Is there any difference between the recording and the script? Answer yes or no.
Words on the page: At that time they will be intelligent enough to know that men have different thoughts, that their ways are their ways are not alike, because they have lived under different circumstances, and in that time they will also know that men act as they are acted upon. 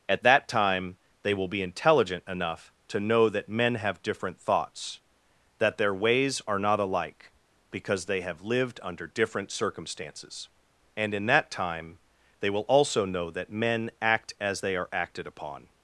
yes